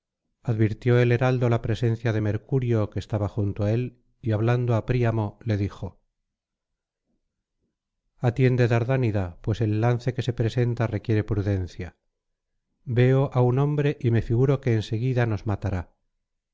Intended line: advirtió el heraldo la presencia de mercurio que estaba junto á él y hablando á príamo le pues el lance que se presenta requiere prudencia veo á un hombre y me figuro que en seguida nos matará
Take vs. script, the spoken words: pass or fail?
fail